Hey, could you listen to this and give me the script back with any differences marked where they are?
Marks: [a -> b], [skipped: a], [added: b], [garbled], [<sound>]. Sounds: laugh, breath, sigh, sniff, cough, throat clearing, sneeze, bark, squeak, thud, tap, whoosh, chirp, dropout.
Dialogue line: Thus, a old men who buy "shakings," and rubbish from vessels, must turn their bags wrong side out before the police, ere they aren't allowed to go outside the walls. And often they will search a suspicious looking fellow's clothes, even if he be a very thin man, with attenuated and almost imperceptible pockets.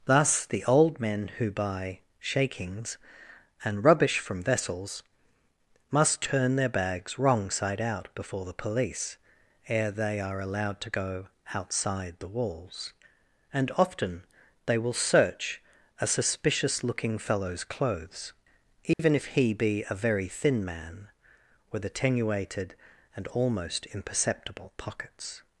Thus, [a -> the] old men who buy "shakings," and rubbish from vessels, must turn their bags wrong side out before the police, ere they [aren't -> are] allowed to go outside the walls. And often they will search a suspicious looking fellow's clothes, even [dropout] if he be a very thin man, with attenuated and almost imperceptible pockets.